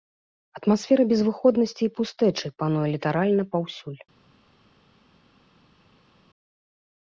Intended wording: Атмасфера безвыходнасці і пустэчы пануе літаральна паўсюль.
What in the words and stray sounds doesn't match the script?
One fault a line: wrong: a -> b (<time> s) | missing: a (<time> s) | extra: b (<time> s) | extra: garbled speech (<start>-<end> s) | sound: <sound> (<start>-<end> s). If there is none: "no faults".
no faults